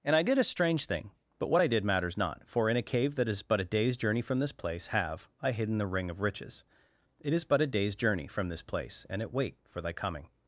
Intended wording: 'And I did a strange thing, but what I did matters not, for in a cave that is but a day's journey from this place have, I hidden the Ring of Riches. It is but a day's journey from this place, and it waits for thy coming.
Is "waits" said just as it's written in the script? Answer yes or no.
no